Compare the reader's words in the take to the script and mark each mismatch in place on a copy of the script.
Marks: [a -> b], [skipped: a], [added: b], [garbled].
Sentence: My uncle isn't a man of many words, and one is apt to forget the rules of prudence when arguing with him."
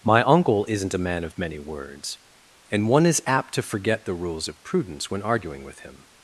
My uncle isn't a man of many words, and one is apt to forget the rules of prudence when arguing with him."